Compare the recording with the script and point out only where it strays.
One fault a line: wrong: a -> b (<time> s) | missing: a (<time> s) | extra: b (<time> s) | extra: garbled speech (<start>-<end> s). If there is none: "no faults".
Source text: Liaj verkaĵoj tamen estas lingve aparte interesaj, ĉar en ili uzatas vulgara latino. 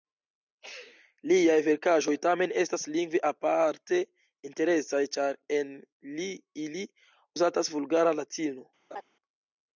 no faults